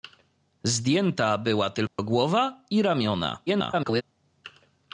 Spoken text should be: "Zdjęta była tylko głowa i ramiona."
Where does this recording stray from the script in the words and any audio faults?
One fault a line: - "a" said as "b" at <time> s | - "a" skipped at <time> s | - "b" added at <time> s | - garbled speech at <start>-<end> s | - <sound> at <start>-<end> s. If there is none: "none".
- dropout at 1.9-2.0 s
- garbled speech at 3.5-4.0 s